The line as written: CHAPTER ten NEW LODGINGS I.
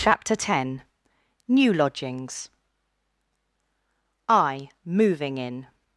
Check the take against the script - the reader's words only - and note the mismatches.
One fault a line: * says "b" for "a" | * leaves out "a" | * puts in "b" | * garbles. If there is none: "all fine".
* puts in "MOVING IN"